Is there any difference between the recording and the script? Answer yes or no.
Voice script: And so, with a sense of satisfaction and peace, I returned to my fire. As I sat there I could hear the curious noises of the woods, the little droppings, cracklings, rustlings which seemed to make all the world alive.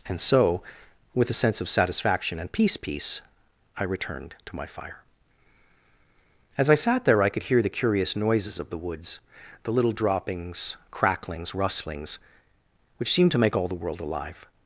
yes